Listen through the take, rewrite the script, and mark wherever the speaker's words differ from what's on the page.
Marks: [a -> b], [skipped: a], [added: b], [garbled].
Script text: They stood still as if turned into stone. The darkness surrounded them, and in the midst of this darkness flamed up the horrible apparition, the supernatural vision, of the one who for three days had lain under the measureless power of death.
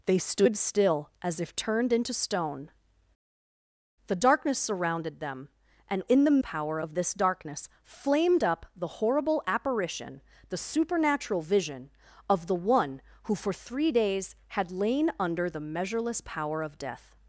They stood still as if turned into stone. The darkness surrounded them, and in the [midst -> power] of this darkness flamed up the horrible apparition, the supernatural vision, of the one who for three days had lain under the measureless power of death.